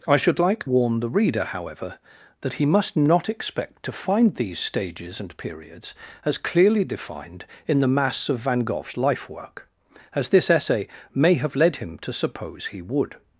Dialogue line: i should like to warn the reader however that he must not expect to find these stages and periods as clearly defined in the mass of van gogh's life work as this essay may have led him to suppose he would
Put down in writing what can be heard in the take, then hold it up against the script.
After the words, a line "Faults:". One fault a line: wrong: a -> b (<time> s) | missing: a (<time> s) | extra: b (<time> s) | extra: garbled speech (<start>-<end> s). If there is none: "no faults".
i should like warn the reader however that he must not expect to find these stages and periods as clearly defined in the mass of van gogh's life work as this essay may have led him to suppose he would
Faults:
missing: to (0.7 s)